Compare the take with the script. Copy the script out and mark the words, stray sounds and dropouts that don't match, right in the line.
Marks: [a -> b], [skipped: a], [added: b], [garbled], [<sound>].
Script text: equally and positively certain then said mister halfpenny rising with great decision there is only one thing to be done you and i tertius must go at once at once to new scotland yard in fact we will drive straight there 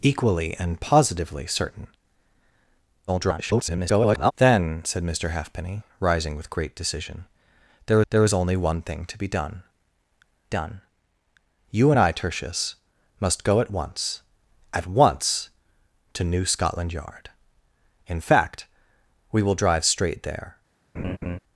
equally and positively certain [garbled] then said mister halfpenny rising with great decision there [added: there] is only one thing to be done [added: done] you and i tertius must go at once at once to new scotland yard in fact we will drive straight there [laugh]